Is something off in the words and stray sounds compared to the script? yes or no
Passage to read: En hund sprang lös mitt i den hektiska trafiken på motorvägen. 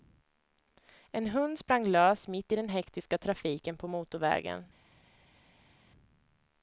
no